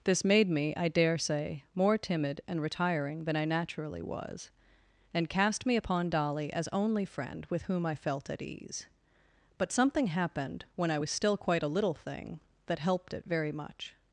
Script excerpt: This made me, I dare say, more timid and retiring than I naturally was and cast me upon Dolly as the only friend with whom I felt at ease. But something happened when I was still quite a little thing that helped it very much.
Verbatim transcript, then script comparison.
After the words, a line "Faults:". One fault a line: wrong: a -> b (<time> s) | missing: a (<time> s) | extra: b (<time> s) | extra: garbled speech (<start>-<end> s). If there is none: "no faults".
This made me, I dare say, more timid and retiring than I naturally was and cast me upon Dolly as only friend with whom I felt at ease. But something happened when I was still quite a little thing that helped it very much.
Faults:
missing: the (6.7 s)